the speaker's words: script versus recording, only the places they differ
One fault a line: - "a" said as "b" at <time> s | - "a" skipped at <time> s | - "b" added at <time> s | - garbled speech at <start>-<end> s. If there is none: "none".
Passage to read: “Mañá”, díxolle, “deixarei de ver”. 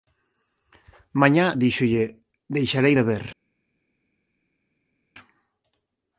none